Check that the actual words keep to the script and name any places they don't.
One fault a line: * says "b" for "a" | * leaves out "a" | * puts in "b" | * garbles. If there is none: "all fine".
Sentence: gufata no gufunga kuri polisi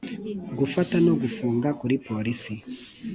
all fine